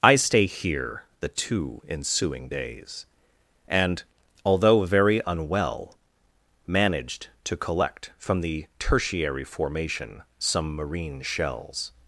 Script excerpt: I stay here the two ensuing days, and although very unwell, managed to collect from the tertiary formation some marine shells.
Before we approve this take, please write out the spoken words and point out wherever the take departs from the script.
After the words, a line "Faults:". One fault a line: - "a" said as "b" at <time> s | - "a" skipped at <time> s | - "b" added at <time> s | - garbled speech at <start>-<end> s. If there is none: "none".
I stay here the two ensuing days, and although very unwell, managed to collect from the tertiary formation some marine shells.
Faults:
none